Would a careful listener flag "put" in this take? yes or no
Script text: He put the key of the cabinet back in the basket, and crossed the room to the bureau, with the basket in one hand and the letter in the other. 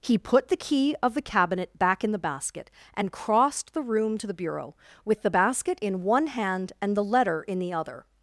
no